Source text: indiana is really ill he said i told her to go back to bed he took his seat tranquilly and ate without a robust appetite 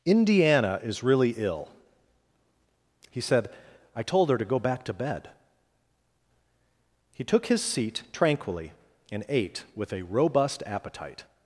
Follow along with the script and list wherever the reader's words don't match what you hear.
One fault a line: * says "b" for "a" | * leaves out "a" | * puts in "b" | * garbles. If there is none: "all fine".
* says "with" for "without"